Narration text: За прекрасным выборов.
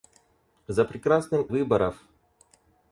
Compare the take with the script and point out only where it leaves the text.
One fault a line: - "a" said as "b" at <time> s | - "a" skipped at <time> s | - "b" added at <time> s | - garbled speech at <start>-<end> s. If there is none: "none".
none